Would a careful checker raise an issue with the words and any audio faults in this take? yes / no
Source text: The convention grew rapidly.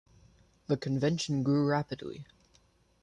no